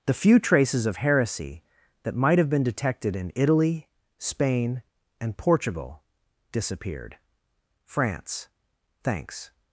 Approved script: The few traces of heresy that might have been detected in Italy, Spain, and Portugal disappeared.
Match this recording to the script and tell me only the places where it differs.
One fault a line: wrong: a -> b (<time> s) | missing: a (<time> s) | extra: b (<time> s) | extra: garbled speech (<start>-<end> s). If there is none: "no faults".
extra: France thanks (7.8 s)